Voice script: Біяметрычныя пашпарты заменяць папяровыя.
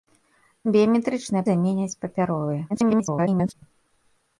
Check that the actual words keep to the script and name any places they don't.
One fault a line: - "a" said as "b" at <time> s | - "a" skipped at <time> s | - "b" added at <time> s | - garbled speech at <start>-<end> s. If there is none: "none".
- "пашпарты" skipped at 1.4 s
- garbled speech at 2.7-3.5 s